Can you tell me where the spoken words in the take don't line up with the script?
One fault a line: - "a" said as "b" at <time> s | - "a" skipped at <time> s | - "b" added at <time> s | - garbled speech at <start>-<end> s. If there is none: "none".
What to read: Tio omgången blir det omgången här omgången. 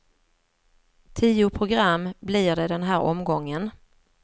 - "omgången" said as "program" at 1.5 s
- "omgången" said as "den" at 2.7 s